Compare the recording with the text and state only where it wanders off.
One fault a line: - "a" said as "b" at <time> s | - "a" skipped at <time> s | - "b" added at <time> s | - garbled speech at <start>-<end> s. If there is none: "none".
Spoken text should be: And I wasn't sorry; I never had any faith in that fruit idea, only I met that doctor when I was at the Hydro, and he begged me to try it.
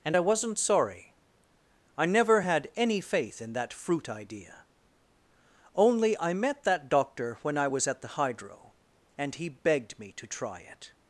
none